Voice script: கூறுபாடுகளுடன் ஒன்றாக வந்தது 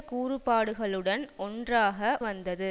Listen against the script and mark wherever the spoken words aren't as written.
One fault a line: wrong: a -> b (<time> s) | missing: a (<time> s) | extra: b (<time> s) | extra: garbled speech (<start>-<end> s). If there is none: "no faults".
no faults